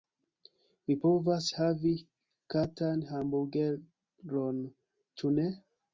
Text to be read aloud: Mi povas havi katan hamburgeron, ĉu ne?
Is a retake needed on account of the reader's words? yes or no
no